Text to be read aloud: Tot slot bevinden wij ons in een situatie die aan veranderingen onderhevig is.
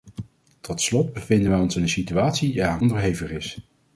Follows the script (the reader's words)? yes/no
no